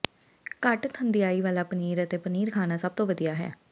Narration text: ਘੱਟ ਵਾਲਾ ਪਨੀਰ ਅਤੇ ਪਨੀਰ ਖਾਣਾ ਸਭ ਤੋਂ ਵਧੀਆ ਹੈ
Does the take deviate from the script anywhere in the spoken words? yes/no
yes